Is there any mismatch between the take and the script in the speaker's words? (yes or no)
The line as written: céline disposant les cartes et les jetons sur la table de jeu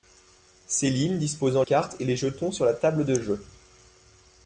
yes